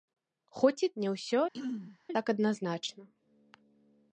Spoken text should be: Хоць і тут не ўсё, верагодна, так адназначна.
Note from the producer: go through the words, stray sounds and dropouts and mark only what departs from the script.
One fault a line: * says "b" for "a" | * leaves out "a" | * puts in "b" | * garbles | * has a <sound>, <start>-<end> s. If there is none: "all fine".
* leaves out "тут"
* leaves out "верагодна"
* has a throat clearing, 1.5-2.0 s